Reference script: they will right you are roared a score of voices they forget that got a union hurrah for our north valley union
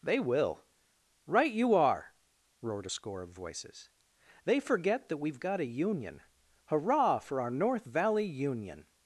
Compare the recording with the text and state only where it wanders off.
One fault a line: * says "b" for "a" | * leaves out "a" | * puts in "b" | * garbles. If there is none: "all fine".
* puts in "we've"